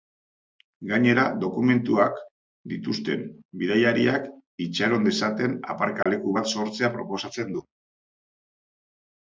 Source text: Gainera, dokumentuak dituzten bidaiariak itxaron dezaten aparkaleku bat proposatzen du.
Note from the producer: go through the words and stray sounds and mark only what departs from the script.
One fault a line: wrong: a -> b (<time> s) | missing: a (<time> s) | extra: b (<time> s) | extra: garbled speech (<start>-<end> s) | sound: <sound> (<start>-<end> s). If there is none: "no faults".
sound: dropout (6.0-6.1 s)
extra: sortzea (6.6 s)